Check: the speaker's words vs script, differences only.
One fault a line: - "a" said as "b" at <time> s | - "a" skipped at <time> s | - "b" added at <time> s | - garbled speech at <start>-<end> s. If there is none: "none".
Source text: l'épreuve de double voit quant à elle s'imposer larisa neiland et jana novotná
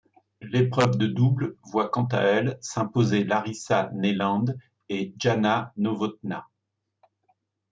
none